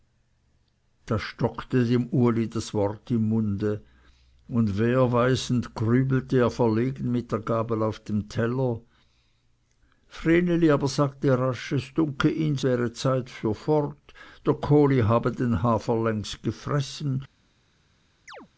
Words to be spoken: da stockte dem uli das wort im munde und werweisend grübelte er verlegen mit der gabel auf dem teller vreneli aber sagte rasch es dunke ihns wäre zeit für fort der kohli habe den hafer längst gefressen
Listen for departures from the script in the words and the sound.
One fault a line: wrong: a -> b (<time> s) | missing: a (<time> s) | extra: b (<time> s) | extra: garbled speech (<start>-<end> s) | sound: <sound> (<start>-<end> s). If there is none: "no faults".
sound: chirp (18.3-18.5 s)